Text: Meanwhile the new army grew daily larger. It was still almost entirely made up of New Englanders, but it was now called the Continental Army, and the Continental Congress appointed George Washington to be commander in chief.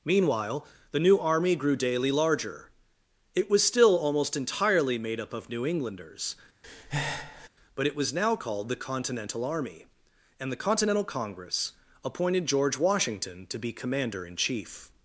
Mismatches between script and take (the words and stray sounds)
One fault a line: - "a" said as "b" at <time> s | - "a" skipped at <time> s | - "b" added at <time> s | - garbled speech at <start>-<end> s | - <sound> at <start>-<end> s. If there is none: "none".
- breath at 6.6-7.5 s